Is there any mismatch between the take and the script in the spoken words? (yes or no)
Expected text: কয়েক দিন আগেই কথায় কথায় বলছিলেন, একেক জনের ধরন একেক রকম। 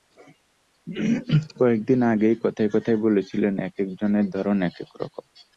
no